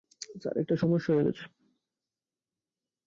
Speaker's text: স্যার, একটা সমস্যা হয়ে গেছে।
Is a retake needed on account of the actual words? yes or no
no